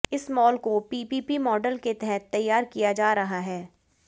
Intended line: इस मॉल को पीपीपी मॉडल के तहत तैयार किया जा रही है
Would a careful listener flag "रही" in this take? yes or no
yes